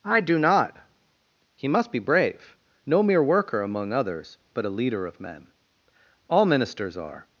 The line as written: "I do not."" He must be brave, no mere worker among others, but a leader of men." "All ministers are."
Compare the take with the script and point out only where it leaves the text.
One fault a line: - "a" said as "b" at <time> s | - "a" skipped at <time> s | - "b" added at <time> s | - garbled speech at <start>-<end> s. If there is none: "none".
none